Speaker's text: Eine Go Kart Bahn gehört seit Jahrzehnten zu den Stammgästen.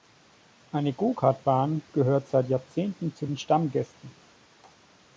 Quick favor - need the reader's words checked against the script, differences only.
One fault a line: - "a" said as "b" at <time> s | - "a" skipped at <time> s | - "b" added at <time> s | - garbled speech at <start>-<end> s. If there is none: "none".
none